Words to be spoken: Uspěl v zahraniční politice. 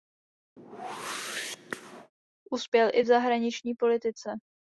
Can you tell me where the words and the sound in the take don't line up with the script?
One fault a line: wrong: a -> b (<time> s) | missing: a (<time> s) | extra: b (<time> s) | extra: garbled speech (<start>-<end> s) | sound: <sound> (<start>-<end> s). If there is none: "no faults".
sound: whoosh (0.6-2.1 s)
extra: i (2.9 s)